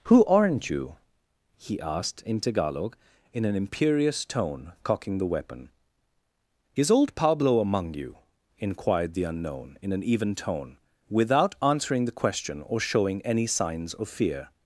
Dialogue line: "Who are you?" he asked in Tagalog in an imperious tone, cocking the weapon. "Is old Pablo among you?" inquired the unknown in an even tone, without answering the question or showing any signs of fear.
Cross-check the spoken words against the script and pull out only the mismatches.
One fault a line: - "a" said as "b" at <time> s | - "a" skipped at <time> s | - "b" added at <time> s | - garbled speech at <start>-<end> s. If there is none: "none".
- "are" said as "aren't" at 0.2 s